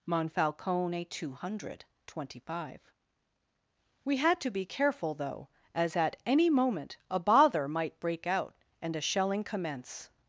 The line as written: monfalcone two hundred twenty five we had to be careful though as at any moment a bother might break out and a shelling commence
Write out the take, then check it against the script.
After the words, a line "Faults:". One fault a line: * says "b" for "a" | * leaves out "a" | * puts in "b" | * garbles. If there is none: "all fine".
monfalcone two hundred twenty five we had to be careful though as at any moment a bother might break out and a shelling commence
Faults:
all fine